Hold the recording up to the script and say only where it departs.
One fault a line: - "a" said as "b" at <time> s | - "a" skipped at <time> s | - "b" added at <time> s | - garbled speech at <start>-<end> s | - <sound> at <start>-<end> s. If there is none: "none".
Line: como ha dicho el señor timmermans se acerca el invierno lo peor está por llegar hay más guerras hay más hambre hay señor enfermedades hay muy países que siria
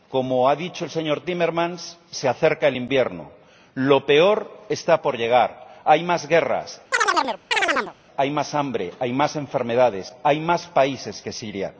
- chirp at 6.9-7.9 s
- "señor" said as "más" at 9.1 s
- "muy" said as "más" at 10.4 s